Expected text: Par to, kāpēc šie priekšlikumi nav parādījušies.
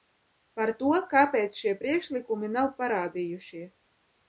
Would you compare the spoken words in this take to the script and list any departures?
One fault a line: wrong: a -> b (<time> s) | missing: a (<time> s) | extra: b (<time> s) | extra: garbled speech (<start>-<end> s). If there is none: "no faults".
no faults